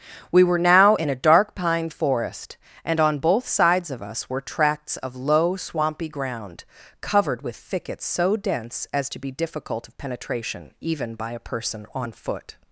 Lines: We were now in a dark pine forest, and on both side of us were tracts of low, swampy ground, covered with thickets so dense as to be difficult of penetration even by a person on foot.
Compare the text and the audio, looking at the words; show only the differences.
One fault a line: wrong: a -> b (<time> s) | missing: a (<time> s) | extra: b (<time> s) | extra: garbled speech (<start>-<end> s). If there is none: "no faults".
wrong: side -> sides (3.5 s)